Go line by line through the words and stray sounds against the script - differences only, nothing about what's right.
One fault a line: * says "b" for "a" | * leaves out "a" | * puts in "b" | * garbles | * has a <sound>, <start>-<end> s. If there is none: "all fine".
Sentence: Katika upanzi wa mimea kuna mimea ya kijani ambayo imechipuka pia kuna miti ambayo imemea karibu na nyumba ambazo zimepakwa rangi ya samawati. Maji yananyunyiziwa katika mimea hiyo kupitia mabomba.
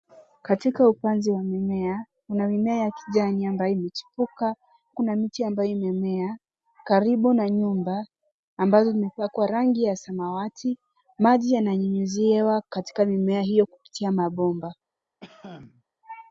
* leaves out "pia"
* has a cough, 15.2-15.8 s